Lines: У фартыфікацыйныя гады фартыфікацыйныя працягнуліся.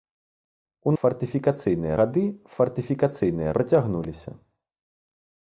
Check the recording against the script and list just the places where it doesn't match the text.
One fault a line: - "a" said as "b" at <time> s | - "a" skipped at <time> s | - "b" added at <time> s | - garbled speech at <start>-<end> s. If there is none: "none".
none